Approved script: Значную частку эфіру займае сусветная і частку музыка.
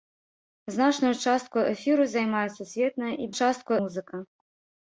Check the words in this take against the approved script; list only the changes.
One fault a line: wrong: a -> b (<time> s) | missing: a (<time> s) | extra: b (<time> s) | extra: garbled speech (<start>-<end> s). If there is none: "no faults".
no faults